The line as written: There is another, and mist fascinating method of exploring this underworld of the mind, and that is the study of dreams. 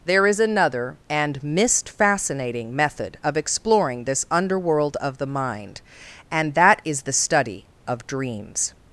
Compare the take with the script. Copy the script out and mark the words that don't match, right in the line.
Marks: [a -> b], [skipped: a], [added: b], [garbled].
There is another, and mist fascinating method of exploring this underworld of the mind, and that is the study of dreams.